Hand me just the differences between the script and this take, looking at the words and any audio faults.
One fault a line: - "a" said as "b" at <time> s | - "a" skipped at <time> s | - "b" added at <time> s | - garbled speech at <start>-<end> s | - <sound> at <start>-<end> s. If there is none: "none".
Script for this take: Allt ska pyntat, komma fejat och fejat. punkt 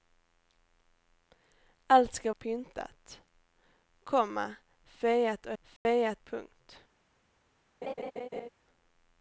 - dropout at 5.8-5.9 s
- laugh at 7.8-8.5 s